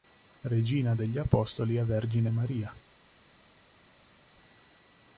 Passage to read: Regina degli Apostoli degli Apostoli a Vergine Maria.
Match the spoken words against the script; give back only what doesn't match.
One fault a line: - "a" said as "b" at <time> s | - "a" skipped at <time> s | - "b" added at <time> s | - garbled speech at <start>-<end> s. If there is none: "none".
- "degli Apostoli" skipped at 1.8 s